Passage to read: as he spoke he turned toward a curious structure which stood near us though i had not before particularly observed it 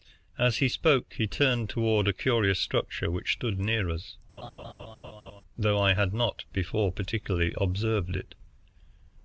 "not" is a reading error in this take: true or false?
false